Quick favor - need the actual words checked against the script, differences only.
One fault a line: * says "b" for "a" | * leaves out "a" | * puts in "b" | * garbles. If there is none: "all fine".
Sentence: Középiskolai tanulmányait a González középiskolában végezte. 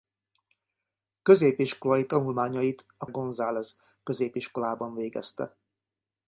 all fine